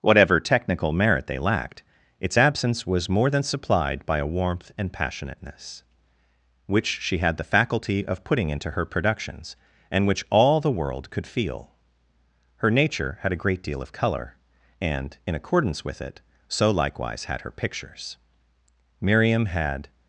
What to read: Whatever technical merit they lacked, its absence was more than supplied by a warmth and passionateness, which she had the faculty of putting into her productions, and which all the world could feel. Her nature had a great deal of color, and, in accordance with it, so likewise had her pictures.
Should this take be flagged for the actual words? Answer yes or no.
yes